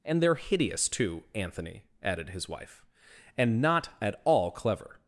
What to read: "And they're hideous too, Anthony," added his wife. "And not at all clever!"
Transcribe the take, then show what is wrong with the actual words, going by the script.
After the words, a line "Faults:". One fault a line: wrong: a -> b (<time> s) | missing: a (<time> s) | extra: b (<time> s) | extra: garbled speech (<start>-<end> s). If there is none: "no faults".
"And they're hideous too, Anthony," added his wife. "And not at all clever!"
Faults:
no faults